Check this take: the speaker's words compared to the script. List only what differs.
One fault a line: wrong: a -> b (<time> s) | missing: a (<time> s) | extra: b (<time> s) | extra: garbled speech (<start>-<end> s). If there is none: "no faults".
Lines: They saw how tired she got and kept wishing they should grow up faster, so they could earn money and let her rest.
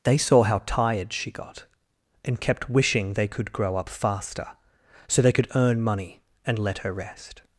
wrong: should -> could (3.3 s)